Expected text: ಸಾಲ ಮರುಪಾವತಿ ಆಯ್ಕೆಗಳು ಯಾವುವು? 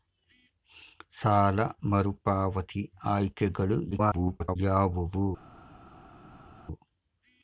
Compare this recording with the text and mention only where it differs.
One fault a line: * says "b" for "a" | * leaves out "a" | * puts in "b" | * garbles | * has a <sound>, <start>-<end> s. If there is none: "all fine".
* garbles